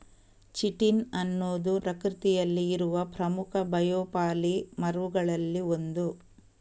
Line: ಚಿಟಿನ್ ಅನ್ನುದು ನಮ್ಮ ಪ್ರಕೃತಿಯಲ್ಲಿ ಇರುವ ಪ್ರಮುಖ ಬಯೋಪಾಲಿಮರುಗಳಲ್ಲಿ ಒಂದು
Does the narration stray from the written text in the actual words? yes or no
yes